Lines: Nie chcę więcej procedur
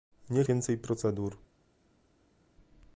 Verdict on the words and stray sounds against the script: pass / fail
fail